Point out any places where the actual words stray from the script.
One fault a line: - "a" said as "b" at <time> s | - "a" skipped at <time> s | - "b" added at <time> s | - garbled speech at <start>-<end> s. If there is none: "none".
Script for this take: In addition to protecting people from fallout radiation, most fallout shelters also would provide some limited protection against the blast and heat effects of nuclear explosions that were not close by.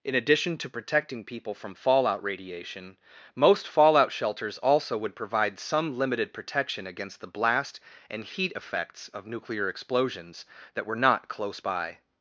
none